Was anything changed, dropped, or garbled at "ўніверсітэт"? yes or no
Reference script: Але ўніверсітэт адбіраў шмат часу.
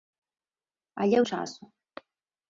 yes